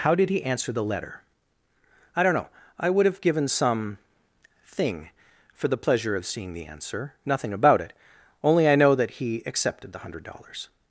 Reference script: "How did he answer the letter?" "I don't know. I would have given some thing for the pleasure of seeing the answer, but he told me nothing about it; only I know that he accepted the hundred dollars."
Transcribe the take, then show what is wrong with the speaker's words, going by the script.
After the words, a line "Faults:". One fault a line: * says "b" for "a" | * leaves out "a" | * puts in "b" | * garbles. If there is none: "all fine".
"How did he answer the letter?" "I don't know. I would have given some thing for the pleasure of seeing the answer, nothing about it; only I know that he accepted the hundred dollars."
Faults:
* leaves out "but he told me"